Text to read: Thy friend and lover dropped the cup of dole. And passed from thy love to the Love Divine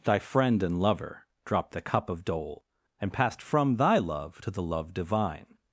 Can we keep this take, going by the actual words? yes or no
yes